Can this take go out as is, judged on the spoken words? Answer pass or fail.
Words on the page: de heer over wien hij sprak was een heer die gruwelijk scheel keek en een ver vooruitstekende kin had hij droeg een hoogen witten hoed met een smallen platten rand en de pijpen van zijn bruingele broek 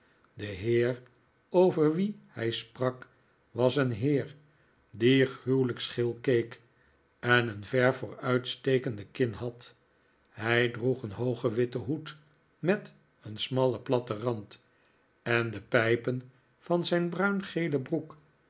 pass